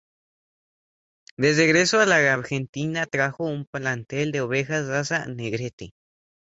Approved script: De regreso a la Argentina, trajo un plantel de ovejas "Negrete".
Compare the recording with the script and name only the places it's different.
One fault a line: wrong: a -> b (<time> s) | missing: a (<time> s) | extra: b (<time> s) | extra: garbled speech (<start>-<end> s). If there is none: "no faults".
extra: raza (4.9 s)